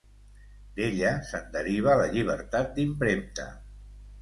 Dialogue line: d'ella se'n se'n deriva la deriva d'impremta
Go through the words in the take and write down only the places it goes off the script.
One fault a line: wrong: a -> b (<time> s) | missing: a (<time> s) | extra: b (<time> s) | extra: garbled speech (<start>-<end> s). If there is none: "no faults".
missing: se'n (1.5 s)
wrong: deriva -> llibertat (2.2 s)